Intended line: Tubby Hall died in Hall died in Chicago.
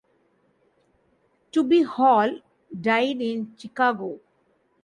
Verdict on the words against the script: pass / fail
fail